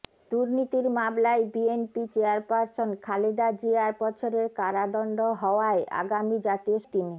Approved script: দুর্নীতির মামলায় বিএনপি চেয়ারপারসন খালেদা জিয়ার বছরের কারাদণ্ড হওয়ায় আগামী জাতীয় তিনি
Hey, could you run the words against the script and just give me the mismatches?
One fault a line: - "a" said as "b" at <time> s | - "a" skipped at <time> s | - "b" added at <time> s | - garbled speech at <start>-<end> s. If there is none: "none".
none